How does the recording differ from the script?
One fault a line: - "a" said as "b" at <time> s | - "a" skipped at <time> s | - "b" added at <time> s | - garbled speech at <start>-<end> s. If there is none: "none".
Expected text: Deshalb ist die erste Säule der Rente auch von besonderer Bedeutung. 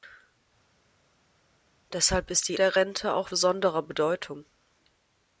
- "erste Säule" skipped at 2.6 s
- "von" skipped at 3.3 s